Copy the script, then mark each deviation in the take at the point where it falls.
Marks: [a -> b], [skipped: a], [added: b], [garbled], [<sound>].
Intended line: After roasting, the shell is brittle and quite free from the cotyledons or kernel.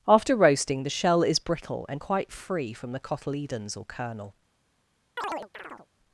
After roasting, the shell is brittle and quite free from the cotyledons or kernel. [chirp]